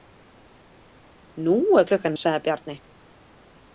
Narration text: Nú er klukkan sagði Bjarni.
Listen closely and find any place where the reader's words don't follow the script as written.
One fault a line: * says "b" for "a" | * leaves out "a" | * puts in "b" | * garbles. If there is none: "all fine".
all fine